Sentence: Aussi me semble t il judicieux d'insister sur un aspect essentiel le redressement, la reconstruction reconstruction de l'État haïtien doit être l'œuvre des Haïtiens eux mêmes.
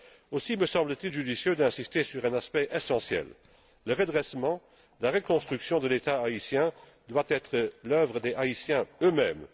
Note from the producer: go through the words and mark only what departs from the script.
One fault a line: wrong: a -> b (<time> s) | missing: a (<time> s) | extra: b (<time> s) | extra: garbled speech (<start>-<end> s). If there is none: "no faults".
missing: reconstruction (5.8 s)